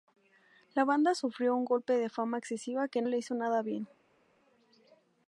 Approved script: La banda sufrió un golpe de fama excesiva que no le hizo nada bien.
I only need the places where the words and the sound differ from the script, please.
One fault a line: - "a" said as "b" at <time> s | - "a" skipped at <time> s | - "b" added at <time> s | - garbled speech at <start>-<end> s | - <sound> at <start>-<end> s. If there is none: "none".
- "no" skipped at 3.0 s